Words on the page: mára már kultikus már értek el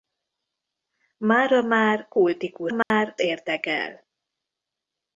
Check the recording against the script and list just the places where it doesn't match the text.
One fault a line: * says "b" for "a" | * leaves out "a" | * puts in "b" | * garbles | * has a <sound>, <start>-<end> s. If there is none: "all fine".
* has a dropout, 2.8-2.9 s